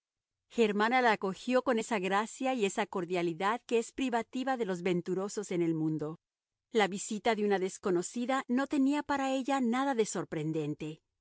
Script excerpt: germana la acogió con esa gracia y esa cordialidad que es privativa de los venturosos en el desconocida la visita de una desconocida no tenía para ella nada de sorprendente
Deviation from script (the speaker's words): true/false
true